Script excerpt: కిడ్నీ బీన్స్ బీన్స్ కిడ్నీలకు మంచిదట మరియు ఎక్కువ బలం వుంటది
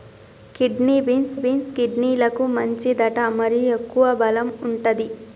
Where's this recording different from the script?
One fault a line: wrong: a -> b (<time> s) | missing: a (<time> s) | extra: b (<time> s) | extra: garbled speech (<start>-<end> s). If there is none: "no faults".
no faults